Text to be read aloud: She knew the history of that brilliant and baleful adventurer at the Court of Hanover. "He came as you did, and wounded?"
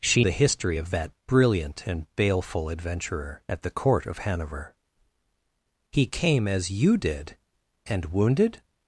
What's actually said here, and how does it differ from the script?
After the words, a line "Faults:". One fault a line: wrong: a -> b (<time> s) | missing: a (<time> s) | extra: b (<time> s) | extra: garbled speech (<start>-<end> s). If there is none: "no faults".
She the history of that brilliant and baleful adventurer at the Court of Hanover. "He came as you did, and wounded?"
Faults:
missing: knew (0.2 s)